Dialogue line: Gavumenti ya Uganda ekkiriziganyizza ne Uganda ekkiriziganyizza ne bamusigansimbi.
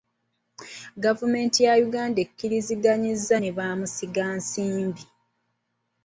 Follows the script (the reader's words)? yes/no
no